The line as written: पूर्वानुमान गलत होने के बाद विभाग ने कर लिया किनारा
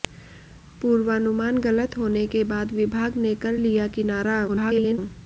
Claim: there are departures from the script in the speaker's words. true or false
true